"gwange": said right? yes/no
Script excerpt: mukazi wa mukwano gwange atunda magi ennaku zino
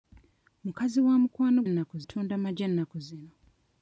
no